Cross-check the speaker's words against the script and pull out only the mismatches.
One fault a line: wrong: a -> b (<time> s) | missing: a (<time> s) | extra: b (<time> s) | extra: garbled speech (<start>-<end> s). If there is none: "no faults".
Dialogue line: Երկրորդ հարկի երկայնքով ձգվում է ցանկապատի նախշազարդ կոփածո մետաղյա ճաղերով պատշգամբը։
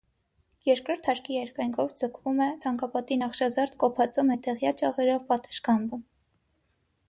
no faults